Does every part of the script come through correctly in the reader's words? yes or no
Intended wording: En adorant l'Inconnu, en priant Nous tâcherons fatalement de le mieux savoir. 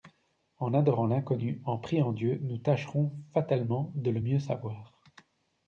no